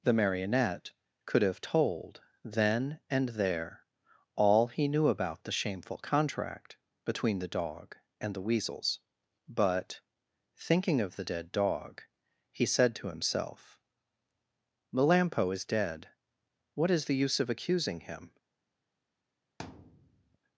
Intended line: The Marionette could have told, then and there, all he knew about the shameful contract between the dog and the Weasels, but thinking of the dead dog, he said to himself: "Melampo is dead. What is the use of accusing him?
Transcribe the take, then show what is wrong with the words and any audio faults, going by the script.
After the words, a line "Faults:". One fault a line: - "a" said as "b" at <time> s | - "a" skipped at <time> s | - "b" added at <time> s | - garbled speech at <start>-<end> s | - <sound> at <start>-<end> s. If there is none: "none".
The Marionette could have told, then and there, all he knew about the shameful contract between the dog and the Weasels, but thinking of the dead dog, he said to himself: "Melampo is dead. What is the use of accusing him?
Faults:
- thud at 19.6-20.4 s